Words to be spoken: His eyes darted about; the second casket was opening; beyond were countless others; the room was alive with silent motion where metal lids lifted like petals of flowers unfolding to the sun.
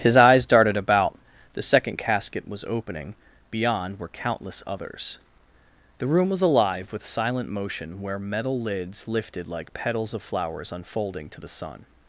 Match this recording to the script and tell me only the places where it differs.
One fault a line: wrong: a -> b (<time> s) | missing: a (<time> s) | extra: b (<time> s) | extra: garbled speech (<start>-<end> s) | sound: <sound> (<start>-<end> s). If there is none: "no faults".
no faults